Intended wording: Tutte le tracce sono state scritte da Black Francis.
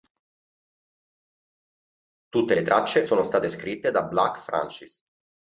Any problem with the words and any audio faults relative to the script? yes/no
no